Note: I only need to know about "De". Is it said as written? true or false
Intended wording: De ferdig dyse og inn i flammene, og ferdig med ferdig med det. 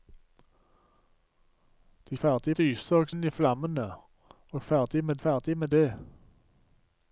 true